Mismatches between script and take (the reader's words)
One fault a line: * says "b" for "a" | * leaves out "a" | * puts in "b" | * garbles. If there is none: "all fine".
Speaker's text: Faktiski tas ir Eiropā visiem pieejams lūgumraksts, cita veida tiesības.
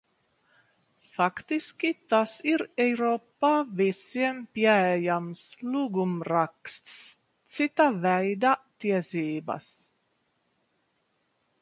all fine